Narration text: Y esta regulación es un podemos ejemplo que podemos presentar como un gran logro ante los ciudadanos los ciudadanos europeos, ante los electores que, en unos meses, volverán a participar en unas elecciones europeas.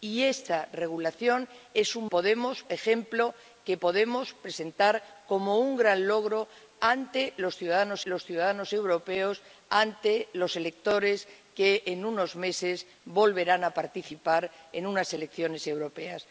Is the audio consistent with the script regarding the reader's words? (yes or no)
yes